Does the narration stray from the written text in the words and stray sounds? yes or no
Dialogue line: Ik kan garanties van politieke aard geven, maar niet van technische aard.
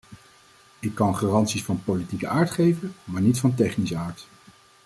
no